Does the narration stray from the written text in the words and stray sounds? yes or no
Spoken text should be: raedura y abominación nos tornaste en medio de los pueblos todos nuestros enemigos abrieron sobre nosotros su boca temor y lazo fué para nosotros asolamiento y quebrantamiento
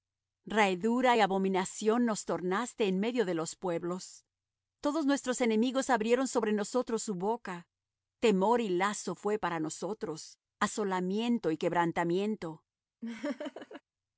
yes